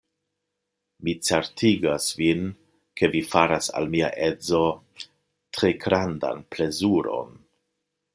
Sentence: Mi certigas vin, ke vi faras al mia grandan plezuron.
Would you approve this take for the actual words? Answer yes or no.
no